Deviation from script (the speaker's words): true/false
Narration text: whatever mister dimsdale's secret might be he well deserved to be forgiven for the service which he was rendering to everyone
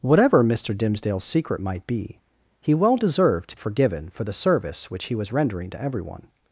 true